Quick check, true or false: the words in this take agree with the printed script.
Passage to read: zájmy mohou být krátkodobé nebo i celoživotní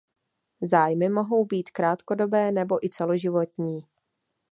true